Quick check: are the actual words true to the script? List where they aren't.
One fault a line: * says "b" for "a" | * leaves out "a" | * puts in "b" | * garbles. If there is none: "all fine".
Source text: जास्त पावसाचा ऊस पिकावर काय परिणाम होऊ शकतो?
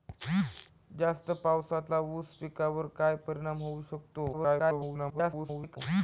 * garbles